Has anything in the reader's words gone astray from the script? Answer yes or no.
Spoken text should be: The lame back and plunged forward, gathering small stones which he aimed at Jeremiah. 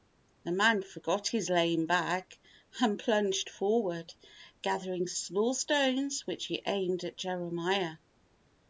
yes